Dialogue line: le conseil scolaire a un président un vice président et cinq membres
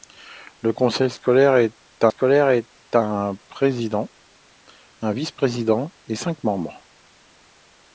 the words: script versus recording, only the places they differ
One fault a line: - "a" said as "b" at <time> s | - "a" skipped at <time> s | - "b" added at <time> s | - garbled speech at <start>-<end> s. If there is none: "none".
- "scolaire a" added at 2.1 s